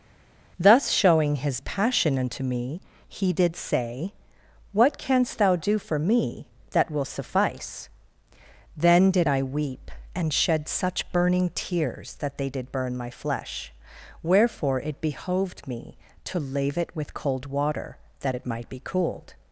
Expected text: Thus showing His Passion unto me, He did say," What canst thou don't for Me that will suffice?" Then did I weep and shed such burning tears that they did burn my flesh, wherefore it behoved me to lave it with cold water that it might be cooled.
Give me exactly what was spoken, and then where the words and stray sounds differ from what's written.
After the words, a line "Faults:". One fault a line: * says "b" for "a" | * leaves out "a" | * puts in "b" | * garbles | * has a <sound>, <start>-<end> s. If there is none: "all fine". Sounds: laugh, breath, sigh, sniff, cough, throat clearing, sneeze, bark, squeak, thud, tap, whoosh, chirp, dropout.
Thus showing His Passion unto me, He did say," What canst thou do for Me that will suffice?" Then did I weep and shed such burning tears that they did burn my flesh, wherefore it behoved me to lave it with cold water that it might be cooled.
Faults:
* says "do" for "don't"